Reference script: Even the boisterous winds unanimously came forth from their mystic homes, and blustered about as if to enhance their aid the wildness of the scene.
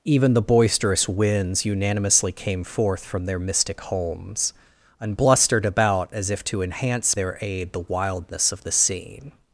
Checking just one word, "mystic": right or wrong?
right